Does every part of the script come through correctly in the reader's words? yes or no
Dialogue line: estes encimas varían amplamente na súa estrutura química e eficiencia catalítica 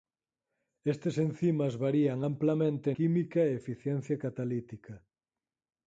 no